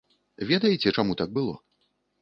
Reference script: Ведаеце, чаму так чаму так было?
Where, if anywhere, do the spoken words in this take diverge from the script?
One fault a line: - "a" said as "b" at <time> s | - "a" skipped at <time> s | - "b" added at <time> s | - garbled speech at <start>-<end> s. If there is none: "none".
- "чаму так" skipped at 1.4 s